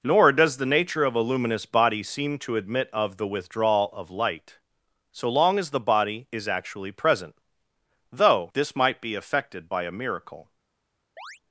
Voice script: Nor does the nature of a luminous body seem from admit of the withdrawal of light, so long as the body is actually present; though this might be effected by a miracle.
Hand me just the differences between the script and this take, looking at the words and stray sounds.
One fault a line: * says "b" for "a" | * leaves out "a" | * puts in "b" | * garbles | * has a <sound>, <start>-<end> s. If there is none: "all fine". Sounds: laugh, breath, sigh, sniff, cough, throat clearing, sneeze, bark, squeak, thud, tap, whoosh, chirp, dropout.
* says "to" for "from"
* has a chirp, 11.2-11.4 s